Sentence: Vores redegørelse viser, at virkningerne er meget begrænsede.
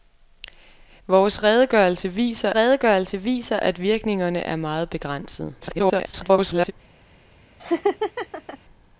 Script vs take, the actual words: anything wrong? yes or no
yes